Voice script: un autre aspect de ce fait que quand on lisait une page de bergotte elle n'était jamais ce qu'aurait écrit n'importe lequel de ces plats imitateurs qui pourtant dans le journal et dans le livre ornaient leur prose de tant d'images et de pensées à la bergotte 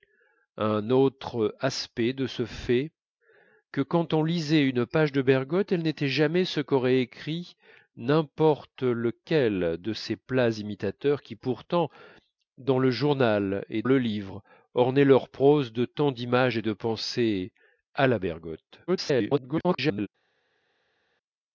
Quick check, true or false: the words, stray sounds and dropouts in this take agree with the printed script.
false